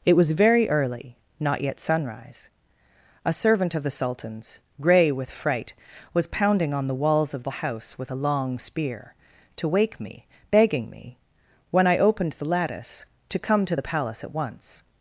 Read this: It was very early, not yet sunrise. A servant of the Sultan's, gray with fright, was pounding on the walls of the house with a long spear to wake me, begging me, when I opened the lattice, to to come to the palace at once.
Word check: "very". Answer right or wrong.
right